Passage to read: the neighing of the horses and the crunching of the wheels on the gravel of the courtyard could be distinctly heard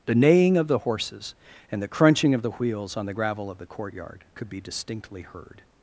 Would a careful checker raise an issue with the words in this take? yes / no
no